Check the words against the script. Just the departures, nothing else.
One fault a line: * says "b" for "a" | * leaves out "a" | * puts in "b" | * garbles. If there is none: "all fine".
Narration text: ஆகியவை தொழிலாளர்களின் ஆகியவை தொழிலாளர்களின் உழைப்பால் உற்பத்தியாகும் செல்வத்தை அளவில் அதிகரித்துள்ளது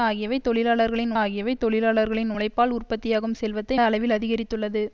all fine